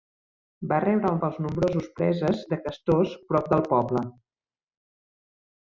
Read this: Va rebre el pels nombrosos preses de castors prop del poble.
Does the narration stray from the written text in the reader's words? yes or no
no